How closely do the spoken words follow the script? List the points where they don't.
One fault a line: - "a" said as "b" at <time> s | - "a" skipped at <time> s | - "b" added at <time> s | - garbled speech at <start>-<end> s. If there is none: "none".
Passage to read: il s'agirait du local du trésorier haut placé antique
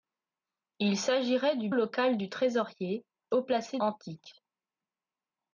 none